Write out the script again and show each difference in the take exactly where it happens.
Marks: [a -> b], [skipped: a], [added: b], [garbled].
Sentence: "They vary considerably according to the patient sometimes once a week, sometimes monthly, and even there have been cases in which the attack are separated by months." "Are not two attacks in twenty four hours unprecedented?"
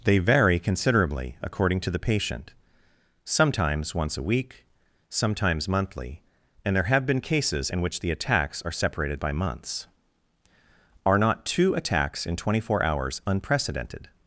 "They vary considerably according to the patient sometimes once a week, sometimes monthly, and [skipped: even] there have been cases in which the [attack -> attacks] are separated by months." "Are not two attacks in twenty four hours unprecedented?"